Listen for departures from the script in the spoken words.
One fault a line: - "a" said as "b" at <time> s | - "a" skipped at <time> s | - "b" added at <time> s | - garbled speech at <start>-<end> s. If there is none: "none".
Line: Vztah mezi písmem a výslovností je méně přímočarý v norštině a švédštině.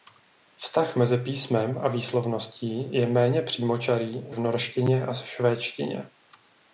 none